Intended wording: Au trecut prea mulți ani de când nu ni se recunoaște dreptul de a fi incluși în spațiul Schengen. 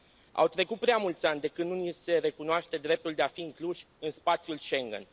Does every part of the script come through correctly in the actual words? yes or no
yes